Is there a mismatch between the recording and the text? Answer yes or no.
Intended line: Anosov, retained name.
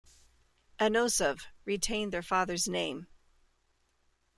yes